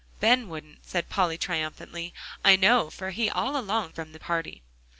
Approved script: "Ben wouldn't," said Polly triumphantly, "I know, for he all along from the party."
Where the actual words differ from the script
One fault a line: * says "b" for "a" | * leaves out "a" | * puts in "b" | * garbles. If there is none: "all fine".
all fine